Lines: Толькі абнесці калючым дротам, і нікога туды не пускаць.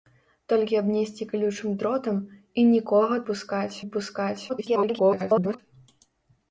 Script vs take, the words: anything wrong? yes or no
yes